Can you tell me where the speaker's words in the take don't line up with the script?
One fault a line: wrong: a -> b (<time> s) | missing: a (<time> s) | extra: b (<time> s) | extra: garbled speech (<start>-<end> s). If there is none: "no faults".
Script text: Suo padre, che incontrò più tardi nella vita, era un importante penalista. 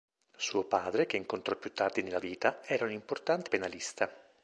no faults